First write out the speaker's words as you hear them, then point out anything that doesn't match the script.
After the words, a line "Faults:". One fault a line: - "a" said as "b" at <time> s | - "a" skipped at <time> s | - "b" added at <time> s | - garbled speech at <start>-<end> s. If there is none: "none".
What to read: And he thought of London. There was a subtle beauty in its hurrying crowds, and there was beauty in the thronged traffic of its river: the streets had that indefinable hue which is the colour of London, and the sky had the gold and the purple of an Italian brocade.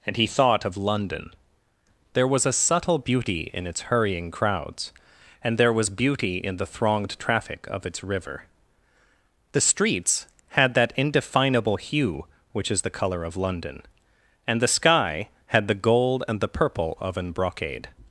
And he thought of London. There was a subtle beauty in its hurrying crowds, and there was beauty in the thronged traffic of its river: the streets had that indefinable hue which is the colour of London, and the sky had the gold and the purple of an brocade.
Faults:
- "Italian" skipped at 17.3 s